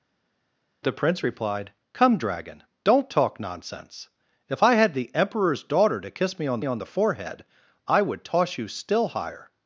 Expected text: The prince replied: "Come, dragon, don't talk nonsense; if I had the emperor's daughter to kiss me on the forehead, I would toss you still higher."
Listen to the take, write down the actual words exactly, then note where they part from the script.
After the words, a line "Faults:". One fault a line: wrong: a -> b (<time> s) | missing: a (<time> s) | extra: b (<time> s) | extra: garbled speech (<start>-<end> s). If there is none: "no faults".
The prince replied: "Come, dragon, don't talk nonsense; if I had the emperor's daughter to kiss me on on the forehead, I would toss you still higher."
Faults:
extra: on (6.6 s)